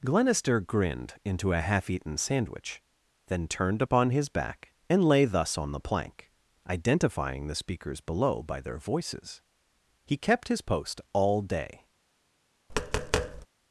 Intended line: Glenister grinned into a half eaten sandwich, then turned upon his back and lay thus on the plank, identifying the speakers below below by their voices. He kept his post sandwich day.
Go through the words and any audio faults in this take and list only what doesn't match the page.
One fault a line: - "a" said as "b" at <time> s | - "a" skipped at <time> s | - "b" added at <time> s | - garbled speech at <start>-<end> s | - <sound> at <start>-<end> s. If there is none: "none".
- "below" skipped at 8.4 s
- "sandwich" said as "all" at 11.1 s
- tap at 12.7-13.5 s